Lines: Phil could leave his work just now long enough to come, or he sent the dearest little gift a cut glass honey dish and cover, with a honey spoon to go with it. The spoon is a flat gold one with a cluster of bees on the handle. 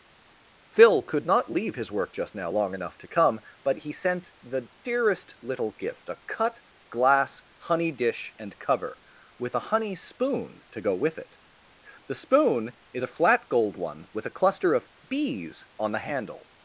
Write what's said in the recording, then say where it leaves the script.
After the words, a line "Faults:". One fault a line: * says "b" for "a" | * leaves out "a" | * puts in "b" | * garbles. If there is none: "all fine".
Phil could not leave his work just now long enough to come, but he sent the dearest little gift a cut glass honey dish and cover, with a honey spoon to go with it. The spoon is a flat gold one with a cluster of bees on the handle.
Faults:
* puts in "not"
* says "but" for "or"